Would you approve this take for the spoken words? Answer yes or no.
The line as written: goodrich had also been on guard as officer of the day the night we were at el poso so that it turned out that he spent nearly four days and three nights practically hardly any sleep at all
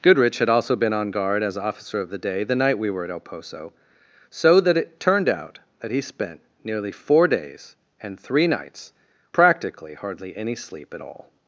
yes